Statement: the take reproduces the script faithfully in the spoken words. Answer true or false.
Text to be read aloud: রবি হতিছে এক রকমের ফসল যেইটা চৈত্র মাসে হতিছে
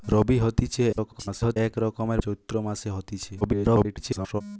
false